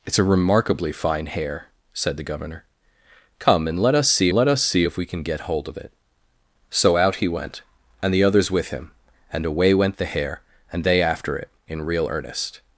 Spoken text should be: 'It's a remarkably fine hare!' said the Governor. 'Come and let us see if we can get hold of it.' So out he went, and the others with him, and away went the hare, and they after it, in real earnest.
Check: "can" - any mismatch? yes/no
no